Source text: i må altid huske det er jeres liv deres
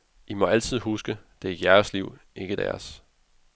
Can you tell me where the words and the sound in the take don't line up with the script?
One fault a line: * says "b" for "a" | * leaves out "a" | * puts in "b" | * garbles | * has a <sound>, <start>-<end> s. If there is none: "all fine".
* puts in "ikke"